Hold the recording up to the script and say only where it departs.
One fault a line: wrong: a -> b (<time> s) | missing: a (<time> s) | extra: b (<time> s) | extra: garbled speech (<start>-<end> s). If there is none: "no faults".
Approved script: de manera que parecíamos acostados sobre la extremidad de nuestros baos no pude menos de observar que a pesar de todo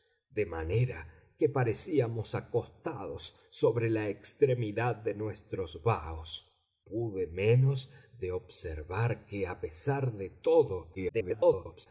missing: no (6.5 s)
extra: garbled speech (10.9-11.9 s)